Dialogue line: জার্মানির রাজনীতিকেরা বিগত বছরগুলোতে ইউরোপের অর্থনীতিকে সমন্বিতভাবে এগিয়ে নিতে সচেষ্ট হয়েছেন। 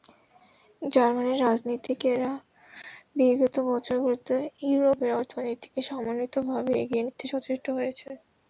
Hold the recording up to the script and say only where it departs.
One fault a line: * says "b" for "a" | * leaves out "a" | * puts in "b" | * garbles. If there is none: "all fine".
all fine